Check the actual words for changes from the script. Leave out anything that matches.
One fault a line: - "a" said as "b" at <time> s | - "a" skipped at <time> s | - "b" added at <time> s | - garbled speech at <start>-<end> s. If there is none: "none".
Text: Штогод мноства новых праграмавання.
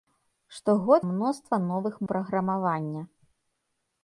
none